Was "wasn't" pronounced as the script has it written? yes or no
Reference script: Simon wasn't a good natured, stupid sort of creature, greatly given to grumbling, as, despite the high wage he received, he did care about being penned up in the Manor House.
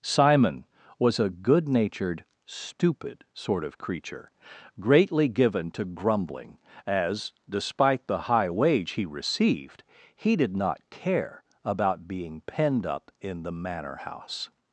no